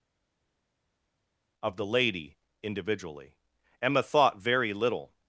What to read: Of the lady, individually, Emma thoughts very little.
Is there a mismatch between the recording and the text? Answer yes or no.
yes